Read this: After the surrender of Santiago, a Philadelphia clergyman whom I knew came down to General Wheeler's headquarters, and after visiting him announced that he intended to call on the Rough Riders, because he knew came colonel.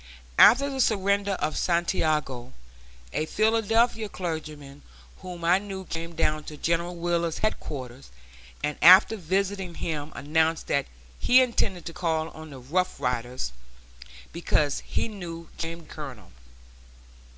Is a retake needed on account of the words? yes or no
no